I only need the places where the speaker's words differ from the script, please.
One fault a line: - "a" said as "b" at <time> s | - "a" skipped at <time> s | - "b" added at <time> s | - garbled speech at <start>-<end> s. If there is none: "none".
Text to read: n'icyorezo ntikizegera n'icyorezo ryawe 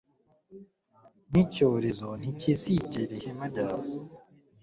- "n'icyorezo" said as "ihema" at 3.2 s